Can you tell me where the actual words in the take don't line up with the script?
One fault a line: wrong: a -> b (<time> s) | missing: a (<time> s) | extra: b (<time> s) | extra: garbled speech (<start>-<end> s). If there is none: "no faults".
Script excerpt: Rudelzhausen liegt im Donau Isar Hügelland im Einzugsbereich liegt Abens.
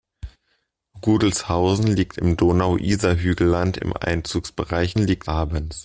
no faults